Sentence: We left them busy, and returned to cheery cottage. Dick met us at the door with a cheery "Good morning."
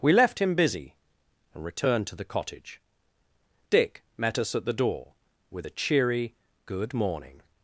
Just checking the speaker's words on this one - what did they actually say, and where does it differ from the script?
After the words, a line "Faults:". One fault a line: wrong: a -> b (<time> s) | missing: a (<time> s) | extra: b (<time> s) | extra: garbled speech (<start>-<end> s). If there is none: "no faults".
We left him busy, and returned to the cottage. Dick met us at the door with a cheery "Good morning."
Faults:
wrong: them -> him (0.4 s)
wrong: cheery -> the (2.1 s)